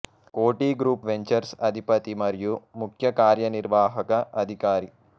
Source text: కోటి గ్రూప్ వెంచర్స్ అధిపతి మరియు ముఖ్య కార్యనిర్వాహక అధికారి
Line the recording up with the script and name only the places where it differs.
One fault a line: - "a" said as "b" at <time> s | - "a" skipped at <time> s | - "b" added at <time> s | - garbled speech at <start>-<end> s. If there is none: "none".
none